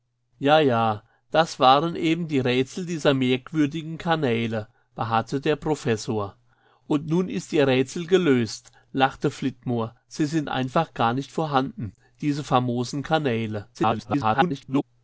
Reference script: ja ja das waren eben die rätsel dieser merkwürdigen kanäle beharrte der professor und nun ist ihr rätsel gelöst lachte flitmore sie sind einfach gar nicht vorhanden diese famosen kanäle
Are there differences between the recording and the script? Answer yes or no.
yes